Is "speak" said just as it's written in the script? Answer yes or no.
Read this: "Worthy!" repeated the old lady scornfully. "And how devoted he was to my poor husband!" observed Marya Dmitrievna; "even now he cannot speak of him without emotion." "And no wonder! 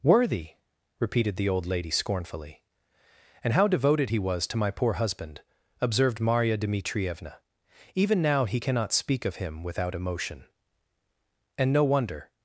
yes